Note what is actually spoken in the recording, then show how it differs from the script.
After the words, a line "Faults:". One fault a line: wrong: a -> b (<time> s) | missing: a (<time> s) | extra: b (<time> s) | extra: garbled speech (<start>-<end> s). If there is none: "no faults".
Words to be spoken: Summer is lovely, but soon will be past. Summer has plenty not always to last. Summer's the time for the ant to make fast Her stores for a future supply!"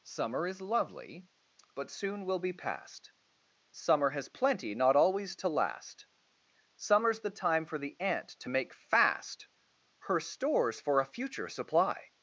Summer is lovely, but soon will be past. Summer has plenty not always to last. Summer's the time for the ant to make fast Her stores for a future supply!"
Faults:
no faults